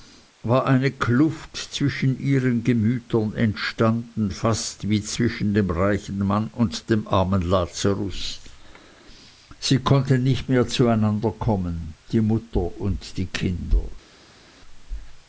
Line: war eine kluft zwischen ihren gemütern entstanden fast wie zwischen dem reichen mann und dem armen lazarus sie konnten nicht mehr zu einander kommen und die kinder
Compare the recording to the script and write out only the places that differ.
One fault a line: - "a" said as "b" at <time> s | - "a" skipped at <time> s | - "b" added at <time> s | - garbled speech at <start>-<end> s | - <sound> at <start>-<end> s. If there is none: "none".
- "die mutter" added at 12.1 s